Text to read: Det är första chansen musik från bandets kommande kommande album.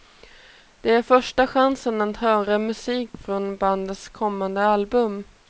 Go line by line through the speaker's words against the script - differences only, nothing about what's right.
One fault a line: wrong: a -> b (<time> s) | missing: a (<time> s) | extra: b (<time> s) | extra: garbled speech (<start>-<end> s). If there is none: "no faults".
extra: att höra (2.0 s)
missing: kommande (4.6 s)